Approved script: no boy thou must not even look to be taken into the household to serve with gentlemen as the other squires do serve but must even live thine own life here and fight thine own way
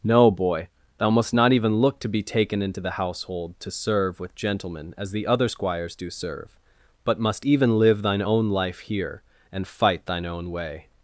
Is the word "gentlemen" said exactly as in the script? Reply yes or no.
yes